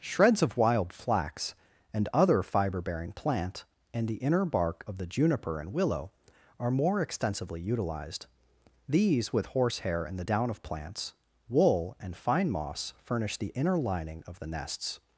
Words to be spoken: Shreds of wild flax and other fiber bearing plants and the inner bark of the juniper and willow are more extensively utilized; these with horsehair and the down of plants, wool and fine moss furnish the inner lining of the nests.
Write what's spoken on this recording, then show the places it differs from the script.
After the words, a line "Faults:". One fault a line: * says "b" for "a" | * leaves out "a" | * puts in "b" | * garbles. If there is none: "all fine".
Shreds of wild flax and other fiber bearing plant and the inner bark of the juniper and willow are more extensively utilized; these with horsehair and the down of plants, wool and fine moss furnish the inner lining of the nests.
Faults:
* says "plant" for "plants"